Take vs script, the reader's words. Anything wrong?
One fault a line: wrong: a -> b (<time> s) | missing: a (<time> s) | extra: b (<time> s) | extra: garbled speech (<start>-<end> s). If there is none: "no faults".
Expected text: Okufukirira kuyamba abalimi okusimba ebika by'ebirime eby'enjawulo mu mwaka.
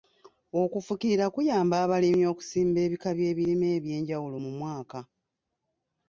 no faults